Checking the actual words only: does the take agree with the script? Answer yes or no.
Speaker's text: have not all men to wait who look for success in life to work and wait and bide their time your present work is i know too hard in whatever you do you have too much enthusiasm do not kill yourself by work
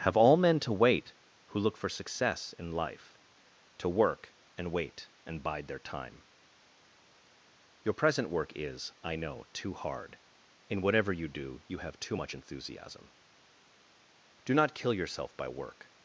no